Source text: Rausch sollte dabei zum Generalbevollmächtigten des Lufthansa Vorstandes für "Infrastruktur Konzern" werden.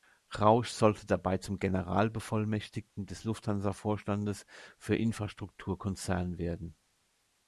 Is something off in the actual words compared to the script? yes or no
no